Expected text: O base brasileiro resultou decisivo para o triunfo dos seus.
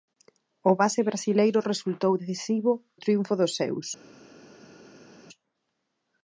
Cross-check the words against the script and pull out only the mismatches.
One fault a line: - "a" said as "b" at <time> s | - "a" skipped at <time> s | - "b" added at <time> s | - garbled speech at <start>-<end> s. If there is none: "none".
- "para" skipped at 2.7 s